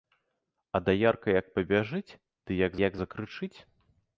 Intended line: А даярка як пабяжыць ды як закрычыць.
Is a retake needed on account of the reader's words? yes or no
yes